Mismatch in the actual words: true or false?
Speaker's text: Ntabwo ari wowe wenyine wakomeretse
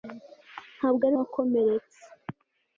true